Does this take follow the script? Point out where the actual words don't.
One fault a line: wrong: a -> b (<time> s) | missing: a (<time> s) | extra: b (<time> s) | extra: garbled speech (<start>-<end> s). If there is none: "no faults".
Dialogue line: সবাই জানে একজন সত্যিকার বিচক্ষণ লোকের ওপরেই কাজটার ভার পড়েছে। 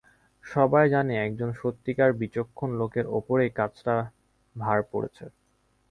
no faults